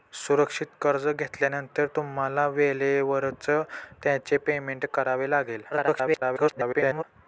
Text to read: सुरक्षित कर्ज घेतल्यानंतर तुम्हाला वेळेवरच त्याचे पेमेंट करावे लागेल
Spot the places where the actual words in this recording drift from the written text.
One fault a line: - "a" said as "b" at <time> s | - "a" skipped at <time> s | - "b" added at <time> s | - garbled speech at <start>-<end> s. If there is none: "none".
- garbled speech at 5.7-7.0 s